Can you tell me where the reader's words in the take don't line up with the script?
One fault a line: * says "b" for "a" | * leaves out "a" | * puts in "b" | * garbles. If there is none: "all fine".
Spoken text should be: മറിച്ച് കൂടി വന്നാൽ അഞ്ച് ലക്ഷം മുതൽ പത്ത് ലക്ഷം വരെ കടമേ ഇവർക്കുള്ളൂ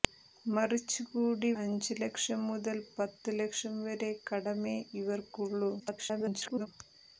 * leaves out "വന്നാൽ"
* garbles